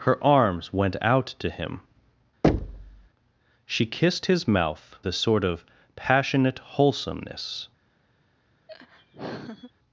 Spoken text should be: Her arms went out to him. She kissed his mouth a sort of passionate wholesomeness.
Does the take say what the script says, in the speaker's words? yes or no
yes